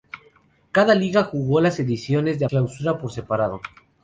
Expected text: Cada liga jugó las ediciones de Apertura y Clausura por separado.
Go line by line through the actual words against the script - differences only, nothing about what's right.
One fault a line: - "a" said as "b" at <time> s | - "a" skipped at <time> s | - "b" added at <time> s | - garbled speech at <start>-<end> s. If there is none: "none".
- "Apertura y" skipped at 2.5 s